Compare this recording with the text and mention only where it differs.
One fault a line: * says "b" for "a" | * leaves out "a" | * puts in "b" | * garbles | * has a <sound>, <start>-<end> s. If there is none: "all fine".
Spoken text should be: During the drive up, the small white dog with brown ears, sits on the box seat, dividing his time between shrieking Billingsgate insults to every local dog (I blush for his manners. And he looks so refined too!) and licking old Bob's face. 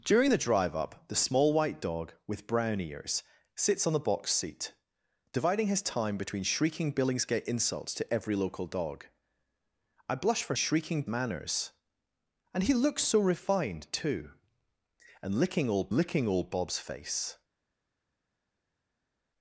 * says "shrieking" for "his"
* puts in "licking old"